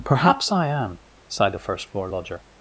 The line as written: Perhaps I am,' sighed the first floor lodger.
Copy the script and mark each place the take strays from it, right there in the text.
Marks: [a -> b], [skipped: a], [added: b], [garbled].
Perhaps I am,' sighed the first floor lodger.